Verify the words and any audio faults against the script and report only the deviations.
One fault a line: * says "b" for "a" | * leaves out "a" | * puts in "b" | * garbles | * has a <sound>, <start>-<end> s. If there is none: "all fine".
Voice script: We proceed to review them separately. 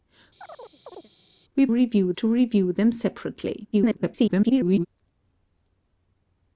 * has a chirp, 0.4-1.1 s
* says "review" for "proceed"
* garbles